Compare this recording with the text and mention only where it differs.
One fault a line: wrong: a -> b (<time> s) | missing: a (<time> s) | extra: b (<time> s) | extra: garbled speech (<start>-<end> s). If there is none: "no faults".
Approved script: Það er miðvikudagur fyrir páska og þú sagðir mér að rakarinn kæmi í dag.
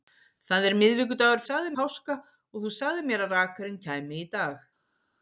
wrong: fyrir -> sagðir (1.5 s)